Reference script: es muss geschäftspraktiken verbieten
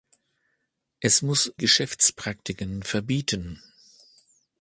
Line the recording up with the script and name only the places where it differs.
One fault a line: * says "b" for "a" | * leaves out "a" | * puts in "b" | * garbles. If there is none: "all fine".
all fine